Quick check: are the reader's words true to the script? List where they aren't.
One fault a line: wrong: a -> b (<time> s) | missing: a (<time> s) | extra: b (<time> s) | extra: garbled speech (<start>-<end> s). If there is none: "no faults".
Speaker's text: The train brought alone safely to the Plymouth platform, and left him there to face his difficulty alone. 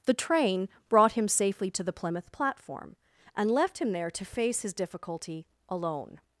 wrong: alone -> him (1.1 s)